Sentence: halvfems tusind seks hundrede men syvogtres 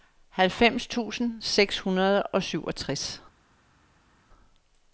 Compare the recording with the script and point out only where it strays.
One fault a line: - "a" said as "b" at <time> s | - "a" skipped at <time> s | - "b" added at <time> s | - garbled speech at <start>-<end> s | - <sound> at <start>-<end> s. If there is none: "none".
- "men" said as "og" at 2.2 s